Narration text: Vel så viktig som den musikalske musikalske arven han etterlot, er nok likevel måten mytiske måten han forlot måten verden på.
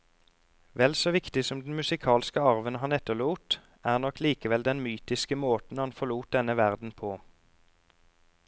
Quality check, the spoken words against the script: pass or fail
fail